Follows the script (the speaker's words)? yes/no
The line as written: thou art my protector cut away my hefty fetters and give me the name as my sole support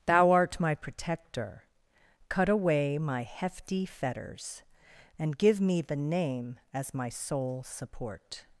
yes